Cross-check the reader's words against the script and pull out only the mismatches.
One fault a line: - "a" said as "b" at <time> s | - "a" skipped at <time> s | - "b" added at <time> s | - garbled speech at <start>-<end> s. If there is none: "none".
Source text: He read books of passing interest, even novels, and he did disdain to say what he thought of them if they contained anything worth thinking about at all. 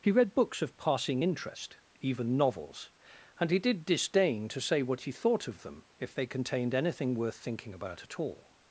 none